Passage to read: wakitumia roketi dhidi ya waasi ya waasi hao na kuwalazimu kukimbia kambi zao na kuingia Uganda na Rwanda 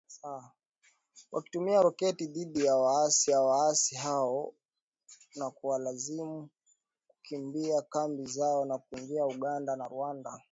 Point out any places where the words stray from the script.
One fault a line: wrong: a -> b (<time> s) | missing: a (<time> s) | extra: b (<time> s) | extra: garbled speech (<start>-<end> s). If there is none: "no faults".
no faults